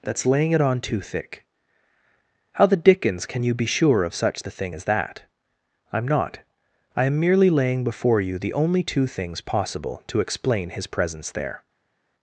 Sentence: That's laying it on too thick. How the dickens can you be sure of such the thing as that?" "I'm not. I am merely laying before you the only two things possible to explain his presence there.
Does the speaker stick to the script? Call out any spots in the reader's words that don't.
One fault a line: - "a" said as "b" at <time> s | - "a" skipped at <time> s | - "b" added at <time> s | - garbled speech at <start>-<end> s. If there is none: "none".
none